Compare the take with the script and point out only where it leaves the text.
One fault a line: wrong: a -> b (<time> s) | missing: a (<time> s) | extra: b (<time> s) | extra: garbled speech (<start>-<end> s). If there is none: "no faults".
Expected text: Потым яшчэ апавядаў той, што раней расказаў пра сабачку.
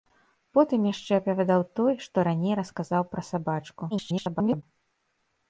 extra: garbled speech (3.9-4.6 s)